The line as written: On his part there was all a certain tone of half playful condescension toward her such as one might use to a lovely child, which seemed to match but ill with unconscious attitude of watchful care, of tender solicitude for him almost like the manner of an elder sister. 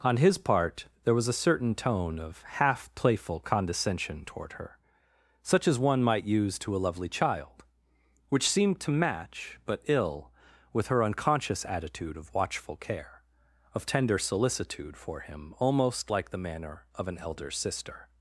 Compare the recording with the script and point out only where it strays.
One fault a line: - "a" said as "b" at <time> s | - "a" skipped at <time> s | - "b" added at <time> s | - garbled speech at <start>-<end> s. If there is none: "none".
- "all" skipped at 1.3 s
- "her" added at 10.9 s